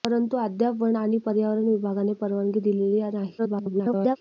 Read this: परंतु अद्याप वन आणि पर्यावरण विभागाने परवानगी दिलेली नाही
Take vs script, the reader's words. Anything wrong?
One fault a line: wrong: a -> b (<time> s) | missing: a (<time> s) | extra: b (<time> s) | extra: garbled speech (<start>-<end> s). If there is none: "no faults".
extra: garbled speech (3.4-4.2 s)